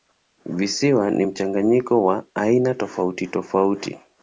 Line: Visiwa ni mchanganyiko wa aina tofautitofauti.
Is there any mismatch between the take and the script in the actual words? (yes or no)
no